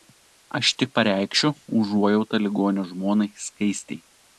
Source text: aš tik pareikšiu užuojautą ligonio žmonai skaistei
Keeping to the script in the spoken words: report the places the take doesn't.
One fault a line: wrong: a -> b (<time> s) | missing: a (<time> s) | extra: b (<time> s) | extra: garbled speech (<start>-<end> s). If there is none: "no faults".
no faults